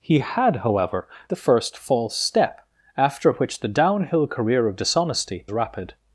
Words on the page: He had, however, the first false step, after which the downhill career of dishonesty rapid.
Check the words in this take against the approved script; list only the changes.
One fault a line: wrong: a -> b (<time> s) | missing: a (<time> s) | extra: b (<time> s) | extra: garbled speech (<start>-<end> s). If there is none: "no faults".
no faults